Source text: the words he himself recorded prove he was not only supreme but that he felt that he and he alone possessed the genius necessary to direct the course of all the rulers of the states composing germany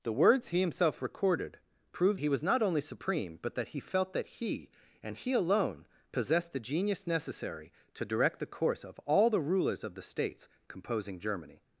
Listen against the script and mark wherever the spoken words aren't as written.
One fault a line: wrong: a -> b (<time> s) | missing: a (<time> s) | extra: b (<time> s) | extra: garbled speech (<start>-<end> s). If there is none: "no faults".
no faults